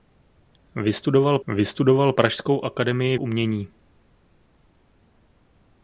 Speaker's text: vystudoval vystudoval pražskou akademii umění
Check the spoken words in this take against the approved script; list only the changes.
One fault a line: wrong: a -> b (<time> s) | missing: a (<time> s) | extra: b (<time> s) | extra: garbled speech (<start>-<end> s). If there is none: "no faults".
no faults